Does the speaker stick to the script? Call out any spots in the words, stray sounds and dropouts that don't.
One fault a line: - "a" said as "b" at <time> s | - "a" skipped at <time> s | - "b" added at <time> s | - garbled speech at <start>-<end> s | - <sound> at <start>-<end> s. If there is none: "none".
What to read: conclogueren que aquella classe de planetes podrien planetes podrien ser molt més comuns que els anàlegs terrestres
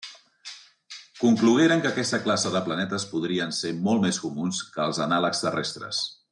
- "aquella" said as "aquesta" at 1.9 s
- "planetes podrien" skipped at 3.5 s